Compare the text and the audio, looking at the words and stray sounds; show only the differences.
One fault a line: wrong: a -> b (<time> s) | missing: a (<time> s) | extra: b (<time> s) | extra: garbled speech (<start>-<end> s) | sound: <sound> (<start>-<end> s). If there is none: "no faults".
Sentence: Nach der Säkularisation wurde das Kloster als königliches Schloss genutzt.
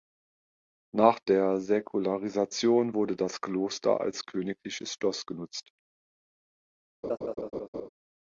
sound: laugh (7.0-7.9 s)